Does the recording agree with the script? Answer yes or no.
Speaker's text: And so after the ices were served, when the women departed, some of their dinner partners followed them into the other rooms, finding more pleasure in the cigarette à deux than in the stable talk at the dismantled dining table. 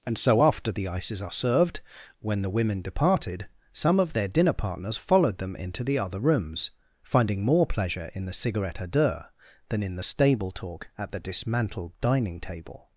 no